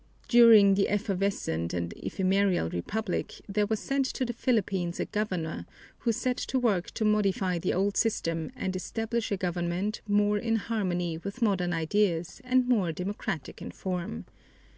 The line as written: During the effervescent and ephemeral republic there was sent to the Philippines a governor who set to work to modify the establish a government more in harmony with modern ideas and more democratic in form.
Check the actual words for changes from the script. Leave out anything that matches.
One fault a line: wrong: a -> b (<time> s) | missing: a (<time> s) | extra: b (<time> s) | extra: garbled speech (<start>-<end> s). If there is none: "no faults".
extra: old system and (7.8 s)